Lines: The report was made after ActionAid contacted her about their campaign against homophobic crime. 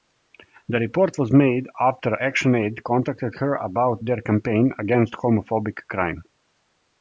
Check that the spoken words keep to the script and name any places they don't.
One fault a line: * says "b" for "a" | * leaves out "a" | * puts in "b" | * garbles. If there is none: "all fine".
all fine